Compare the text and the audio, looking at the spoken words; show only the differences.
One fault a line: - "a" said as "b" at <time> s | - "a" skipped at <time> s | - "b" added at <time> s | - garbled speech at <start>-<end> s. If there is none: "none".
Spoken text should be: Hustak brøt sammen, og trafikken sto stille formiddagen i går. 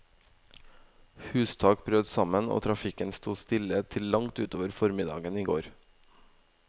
- "til langt utover" added at 4.0 s